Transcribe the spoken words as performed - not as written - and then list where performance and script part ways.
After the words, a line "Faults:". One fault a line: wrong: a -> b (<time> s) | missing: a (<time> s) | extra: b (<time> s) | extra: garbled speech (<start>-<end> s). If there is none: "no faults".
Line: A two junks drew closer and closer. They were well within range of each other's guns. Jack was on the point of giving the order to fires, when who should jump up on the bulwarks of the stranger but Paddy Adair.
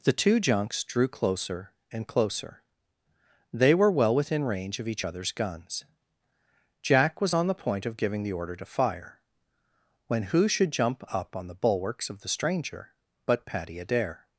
The two junks drew closer and closer. They were well within range of each other's guns. Jack was on the point of giving the order to fire, when who should jump up on the bulwarks of the stranger but Paddy Adair.
Faults:
wrong: A -> The (0.0 s)
wrong: fires -> fire (8.7 s)